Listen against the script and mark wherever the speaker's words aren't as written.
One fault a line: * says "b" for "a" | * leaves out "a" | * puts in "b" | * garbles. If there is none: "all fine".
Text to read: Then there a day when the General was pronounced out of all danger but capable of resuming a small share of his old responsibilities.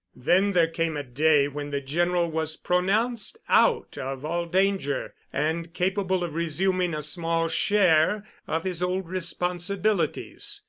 * puts in "came"
* says "and" for "but"